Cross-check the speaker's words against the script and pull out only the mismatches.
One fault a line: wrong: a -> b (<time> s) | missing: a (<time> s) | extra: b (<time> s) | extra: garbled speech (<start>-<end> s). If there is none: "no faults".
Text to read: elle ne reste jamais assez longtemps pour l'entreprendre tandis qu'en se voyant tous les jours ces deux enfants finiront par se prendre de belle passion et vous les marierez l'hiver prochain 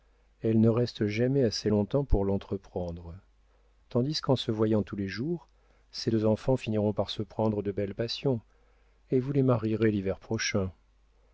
no faults